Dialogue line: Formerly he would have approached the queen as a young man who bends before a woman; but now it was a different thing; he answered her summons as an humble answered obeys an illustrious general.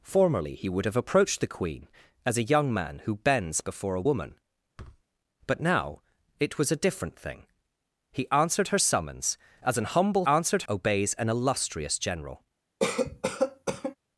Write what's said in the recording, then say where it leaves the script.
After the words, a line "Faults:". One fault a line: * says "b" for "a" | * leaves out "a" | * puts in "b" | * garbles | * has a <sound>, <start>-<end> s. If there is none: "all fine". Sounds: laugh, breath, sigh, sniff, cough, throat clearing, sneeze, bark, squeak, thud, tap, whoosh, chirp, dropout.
Formerly he would have approached the queen as a young man who bends before a woman; but now it was a different thing; he answered her summons as an humble answered obeys an illustrious general.
Faults:
* has a thud, 4.8-5.0 s
* has a cough, 12.8-14.0 s